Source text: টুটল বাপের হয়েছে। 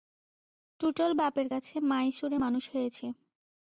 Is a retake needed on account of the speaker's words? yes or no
yes